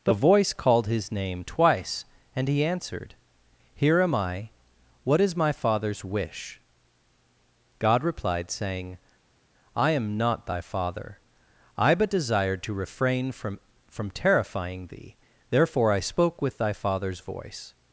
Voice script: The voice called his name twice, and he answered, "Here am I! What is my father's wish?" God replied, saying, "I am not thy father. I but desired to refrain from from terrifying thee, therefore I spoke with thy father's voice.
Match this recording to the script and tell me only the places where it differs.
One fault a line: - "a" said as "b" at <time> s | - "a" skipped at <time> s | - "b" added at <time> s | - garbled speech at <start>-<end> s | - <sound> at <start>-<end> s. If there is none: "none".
none